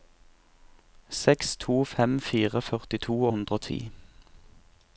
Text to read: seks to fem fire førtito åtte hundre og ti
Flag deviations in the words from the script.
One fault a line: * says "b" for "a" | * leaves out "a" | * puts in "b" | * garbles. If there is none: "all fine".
* leaves out "åtte"